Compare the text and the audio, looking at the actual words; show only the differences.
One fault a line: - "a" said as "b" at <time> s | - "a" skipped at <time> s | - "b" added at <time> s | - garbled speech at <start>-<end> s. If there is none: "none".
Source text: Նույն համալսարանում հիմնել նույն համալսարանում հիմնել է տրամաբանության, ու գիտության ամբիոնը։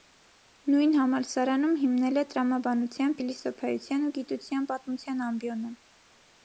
- "նույն համալսարանում հիմնել" skipped at 2.2 s
- "փիլիսոփայության" added at 3.2 s
- "պատմության" added at 4.7 s